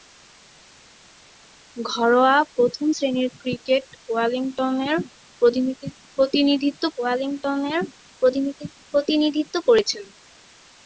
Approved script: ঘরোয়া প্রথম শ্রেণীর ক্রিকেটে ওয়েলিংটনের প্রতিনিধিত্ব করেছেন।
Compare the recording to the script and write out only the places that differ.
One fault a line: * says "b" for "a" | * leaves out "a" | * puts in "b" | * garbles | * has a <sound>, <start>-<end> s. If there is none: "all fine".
* puts in "ওয়েলিংটনের প্রতিনিধিত্ব"